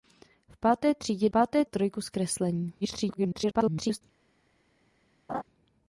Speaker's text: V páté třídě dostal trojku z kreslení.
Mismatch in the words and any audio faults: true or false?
true